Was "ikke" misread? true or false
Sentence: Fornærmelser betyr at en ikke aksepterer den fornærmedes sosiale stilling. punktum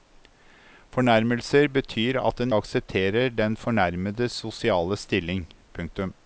true